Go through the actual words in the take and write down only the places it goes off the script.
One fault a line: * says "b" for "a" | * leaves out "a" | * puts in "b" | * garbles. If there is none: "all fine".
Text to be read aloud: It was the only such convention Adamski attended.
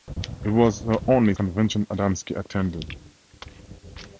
* leaves out "such"